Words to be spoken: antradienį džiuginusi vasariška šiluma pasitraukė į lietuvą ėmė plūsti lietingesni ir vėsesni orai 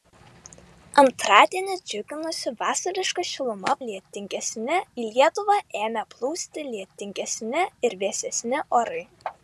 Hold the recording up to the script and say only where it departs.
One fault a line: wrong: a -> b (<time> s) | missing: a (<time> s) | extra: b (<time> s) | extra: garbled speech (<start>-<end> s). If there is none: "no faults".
wrong: pasitraukė -> lietingesni (3.9 s)